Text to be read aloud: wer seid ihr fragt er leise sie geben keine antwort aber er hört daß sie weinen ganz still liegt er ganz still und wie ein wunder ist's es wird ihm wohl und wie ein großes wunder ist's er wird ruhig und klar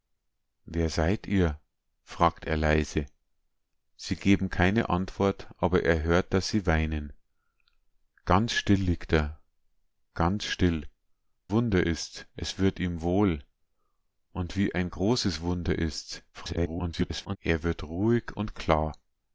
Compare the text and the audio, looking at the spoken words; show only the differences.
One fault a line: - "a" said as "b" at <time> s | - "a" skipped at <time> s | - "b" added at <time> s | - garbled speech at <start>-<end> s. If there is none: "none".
- "und wie ein" skipped at 10.9 s
- garbled speech at 16.3-17.4 s